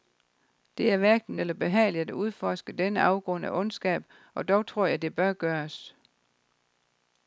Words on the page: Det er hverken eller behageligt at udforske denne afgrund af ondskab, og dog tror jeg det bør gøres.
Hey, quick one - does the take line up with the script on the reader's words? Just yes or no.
yes